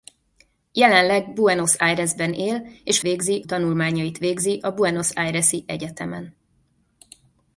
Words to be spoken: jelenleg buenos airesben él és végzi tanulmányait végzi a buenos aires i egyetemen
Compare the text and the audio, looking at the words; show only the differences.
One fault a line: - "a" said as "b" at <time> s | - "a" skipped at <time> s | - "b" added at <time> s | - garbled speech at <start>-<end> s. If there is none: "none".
none